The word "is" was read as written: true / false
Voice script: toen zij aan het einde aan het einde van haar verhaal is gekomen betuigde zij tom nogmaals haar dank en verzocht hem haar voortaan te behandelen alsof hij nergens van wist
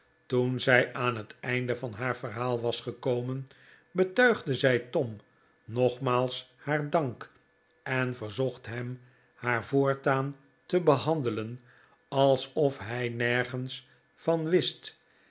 false